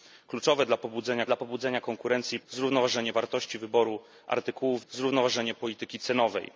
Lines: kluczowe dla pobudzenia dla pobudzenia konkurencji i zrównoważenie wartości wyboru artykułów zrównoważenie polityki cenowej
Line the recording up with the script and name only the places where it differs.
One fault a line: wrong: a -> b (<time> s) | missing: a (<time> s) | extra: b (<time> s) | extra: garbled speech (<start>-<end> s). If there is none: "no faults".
no faults